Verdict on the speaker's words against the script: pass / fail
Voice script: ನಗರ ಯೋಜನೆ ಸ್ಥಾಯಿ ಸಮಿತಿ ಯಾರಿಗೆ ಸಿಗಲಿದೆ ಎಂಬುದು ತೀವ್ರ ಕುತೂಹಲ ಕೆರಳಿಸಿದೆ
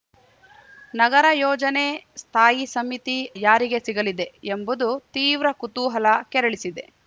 pass